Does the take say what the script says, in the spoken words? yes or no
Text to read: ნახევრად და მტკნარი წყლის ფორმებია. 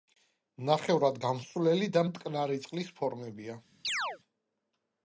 no